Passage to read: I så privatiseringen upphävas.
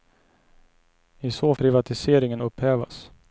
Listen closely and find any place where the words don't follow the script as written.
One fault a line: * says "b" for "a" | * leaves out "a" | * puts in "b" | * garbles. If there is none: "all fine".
all fine